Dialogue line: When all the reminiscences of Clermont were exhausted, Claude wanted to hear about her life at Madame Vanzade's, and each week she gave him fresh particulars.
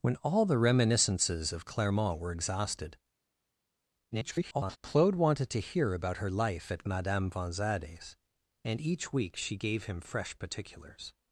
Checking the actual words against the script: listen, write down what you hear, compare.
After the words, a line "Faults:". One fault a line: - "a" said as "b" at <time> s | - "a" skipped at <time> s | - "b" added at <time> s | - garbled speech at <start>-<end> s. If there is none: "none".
When all the reminiscences of Clermont were exhausted, [garbled] Claude wanted to hear about her life at Madame Vanzade's, and each week she gave him fresh particulars.
Faults:
- garbled speech at 4.1-4.8 s